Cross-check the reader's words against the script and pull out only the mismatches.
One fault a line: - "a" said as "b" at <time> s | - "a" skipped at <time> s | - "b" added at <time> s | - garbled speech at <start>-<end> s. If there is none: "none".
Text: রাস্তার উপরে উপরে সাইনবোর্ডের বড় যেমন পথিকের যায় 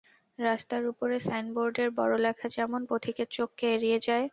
- "উপরে" skipped at 1.1 s
- "লেখা" added at 2.2 s
- "চোখকে এড়িয়ে" added at 3.4 s